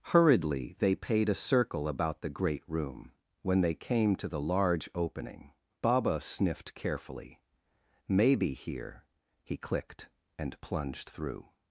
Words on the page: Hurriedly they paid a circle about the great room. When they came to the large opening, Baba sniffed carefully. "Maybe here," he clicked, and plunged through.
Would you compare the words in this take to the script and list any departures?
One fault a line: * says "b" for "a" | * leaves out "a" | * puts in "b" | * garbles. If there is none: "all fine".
all fine